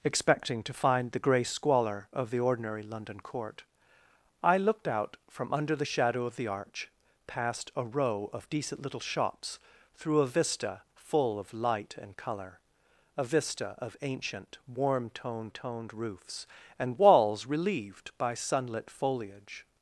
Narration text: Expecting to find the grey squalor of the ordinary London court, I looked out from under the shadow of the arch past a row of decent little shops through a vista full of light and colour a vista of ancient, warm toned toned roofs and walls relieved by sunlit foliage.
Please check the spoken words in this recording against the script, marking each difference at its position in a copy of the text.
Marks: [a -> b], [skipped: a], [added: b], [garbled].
Expecting to find the grey squalor of the ordinary London court, I looked out from under the shadow of the arch past a row of decent little shops through a vista full of light and colour a vista of ancient, warm toned toned roofs and walls relieved by sunlit foliage.